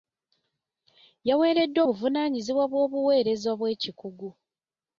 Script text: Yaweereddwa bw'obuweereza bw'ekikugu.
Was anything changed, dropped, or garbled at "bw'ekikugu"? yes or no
no